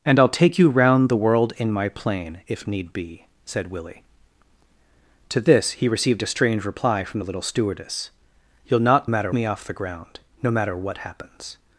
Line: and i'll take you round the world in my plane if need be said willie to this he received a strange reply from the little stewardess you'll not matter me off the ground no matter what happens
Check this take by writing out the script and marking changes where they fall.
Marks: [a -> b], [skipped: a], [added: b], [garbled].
and i'll take you round the world in my plane if need be said willie to this he received a strange reply from the little stewardess you'll not matter me off the ground no matter what happens